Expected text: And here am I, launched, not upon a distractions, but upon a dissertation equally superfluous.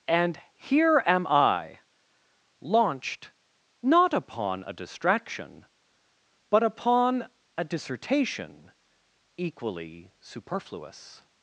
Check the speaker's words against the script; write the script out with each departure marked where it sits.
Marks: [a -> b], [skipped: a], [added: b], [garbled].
And here am I, launched, not upon a [distractions, -> distraction] but upon a dissertation equally superfluous.